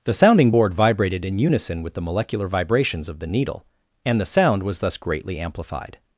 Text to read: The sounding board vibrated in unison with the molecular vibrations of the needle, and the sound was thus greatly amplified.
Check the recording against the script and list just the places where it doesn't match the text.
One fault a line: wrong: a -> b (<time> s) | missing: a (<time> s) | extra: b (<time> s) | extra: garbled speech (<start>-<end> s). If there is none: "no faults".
no faults